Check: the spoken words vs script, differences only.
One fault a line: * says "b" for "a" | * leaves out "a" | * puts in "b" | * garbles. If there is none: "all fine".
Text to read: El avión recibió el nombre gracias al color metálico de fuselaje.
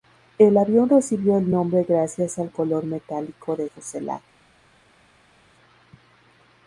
all fine